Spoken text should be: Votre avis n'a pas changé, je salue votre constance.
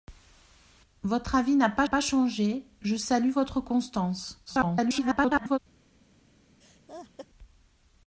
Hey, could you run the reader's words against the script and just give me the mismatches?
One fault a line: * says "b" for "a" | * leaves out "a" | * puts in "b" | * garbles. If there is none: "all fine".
* puts in "pas"
* garbles